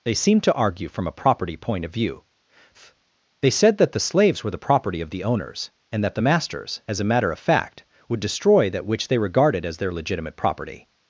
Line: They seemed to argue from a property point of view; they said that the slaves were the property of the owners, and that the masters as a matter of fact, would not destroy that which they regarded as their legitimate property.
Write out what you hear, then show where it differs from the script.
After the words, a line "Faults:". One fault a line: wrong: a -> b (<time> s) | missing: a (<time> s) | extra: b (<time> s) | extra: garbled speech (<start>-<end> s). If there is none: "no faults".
They seemed to argue from a property point of view; they said that the slaves were the property of the owners, and that the masters as a matter of fact, would destroy that which they regarded as their legitimate property.
Faults:
missing: not (8.2 s)